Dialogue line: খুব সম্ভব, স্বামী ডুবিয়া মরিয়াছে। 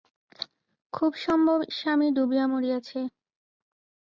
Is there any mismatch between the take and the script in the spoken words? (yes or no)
no